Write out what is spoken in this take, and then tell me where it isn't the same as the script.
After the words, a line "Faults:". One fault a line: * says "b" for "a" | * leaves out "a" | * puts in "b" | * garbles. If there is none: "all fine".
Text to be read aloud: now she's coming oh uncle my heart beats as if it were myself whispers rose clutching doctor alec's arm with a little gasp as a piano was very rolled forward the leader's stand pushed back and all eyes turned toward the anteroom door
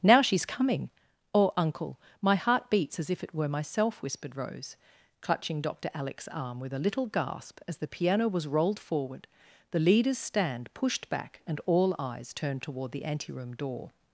now she's coming oh uncle my heart beats as if it were myself whispered rose clutching doctor alec's arm with a little gasp as the piano was rolled forward the leader's stand pushed back and all eyes turned toward the anteroom door
Faults:
* says "whispered" for "whispers"
* says "the" for "a"
* leaves out "very"